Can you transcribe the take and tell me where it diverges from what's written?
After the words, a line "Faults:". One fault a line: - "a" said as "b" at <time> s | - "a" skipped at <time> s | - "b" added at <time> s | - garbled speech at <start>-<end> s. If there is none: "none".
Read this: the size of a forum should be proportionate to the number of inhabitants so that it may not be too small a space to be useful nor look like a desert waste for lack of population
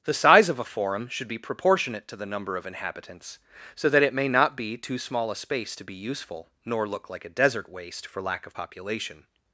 the size of a forum should be proportionate to the number of inhabitants so that it may not be too small a space to be useful nor look like a desert waste for lack of population
Faults:
none